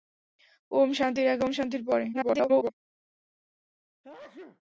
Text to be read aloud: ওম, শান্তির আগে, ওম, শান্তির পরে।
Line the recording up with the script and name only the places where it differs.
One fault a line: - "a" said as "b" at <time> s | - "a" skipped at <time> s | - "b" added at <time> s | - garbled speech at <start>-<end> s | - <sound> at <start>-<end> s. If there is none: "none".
- garbled speech at 2.1-2.7 s
- sneeze at 4.0-4.6 s